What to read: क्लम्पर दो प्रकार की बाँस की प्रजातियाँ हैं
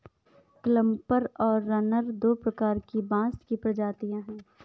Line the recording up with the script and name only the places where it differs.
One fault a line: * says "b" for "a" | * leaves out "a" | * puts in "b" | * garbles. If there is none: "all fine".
* puts in "और रनर"